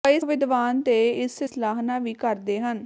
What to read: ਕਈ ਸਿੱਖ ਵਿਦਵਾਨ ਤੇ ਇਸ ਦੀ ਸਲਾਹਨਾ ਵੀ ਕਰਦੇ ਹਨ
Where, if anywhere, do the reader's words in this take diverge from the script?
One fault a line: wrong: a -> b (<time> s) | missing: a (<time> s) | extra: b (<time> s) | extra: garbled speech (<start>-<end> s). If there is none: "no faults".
missing: ਸਿੱਖ (0.2 s)
missing: ਦੀ (1.4 s)